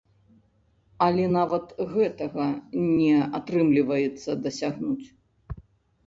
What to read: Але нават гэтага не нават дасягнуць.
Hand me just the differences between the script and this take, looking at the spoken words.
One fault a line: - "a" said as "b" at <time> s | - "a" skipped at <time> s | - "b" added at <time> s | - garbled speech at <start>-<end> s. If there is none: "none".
- "нават" said as "атрымліваецца" at 3.4 s